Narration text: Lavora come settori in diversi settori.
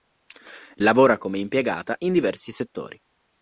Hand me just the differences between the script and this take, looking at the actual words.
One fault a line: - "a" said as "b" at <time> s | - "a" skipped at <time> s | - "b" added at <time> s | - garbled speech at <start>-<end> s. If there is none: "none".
- "settori" said as "impiegata" at 1.4 s